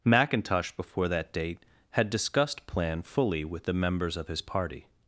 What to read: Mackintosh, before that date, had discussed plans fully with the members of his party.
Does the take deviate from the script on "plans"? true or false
true